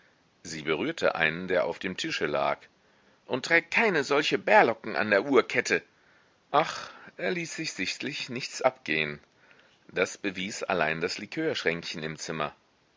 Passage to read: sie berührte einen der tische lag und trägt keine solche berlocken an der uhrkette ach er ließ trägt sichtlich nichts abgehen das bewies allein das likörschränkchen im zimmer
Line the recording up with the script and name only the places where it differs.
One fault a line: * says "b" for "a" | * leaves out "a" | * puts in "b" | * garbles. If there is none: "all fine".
* puts in "auf dem"
* says "sich" for "trägt"